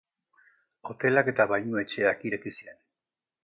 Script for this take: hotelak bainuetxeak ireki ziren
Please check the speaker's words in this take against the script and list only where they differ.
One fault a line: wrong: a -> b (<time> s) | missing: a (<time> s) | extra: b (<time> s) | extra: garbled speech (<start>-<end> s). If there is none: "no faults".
extra: eta (1.3 s)